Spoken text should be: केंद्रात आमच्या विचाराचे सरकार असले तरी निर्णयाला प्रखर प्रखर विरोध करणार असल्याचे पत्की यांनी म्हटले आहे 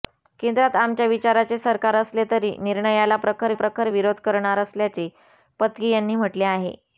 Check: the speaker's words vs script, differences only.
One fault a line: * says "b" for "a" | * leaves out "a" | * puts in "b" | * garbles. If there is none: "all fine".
all fine